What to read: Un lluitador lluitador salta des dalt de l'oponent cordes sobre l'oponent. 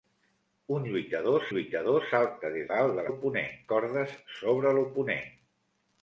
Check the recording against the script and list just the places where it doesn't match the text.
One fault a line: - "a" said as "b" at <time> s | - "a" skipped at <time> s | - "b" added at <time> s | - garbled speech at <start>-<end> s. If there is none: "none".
none